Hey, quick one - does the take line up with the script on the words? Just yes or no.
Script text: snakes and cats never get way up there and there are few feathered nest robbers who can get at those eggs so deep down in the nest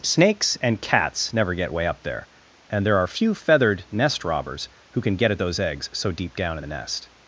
yes